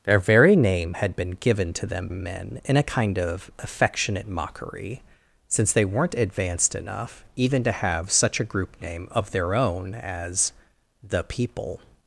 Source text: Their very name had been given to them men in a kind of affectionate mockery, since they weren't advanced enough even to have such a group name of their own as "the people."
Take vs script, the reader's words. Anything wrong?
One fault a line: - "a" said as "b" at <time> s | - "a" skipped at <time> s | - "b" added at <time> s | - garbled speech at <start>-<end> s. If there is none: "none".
none